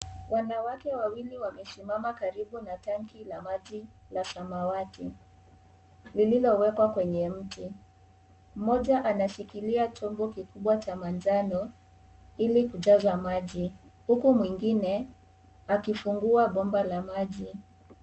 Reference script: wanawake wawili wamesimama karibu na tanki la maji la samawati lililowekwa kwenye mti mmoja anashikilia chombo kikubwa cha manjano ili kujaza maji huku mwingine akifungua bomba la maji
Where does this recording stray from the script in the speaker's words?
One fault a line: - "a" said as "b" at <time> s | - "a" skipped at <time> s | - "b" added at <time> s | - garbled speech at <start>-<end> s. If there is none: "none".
none